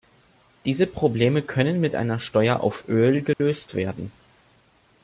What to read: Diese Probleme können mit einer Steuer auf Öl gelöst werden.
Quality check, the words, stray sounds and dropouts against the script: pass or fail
fail